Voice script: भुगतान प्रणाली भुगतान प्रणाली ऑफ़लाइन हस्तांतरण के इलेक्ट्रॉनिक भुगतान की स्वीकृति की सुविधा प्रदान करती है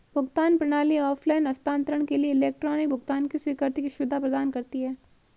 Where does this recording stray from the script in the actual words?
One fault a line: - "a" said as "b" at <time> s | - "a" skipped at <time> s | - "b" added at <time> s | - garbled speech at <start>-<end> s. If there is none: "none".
- "भुगतान प्रणाली" skipped at 1.0 s
- "लिए" added at 2.2 s